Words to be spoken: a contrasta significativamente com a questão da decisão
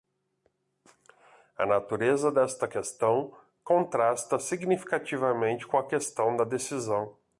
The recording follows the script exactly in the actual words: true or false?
false